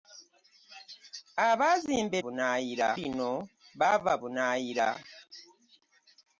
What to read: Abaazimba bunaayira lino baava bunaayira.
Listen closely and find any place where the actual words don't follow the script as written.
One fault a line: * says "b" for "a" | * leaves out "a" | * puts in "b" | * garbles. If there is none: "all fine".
all fine